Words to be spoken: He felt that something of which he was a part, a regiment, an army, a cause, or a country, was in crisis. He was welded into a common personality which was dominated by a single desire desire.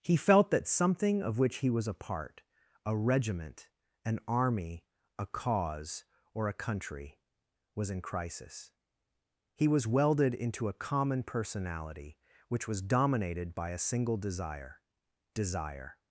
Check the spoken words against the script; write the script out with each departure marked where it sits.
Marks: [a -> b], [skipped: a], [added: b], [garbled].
He felt that something of which he was a part, a regiment, an army, a cause, or a country, was in crisis. He was welded into a common personality which was dominated by a single desire desire.